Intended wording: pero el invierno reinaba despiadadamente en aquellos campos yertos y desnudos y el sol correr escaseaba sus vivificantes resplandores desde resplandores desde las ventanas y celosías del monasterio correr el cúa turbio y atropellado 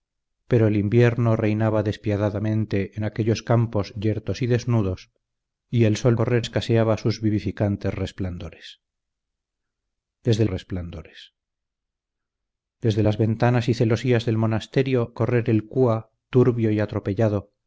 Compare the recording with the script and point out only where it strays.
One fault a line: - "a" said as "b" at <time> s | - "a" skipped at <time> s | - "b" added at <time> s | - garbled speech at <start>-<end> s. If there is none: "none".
none